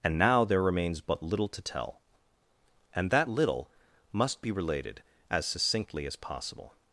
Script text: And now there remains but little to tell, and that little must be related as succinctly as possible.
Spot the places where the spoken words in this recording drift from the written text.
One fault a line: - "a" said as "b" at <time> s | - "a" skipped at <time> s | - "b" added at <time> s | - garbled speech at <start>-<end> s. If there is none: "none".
none